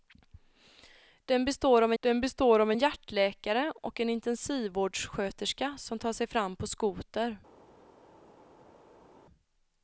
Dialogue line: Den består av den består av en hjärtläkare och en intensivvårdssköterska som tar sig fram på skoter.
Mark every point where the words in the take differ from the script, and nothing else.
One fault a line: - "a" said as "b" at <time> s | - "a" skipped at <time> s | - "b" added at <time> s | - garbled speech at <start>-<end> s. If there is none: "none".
none